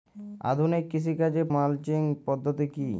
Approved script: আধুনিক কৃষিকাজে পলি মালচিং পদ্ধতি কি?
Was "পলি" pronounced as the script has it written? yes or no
no